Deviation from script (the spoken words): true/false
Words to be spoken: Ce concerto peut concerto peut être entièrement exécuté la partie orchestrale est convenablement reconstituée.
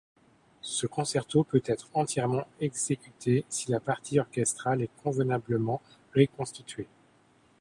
true